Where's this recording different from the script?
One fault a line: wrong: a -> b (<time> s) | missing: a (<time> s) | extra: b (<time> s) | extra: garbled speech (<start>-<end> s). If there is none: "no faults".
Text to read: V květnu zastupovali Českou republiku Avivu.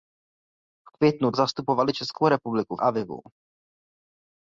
no faults